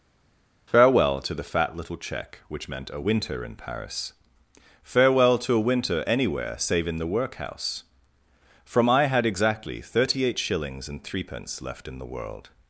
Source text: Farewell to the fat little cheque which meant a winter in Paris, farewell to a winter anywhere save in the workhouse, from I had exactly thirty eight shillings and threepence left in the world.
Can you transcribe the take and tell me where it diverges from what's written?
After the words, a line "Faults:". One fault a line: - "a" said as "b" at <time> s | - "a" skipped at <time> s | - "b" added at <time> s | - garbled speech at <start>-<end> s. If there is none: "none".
Farewell to the fat little cheque which meant a winter in Paris, farewell to a winter anywhere save in the workhouse, from I had exactly thirty eight shillings and threepence left in the world.
Faults:
none